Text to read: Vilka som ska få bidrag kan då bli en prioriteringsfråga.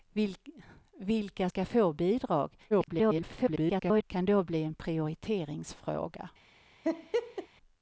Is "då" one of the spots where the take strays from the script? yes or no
no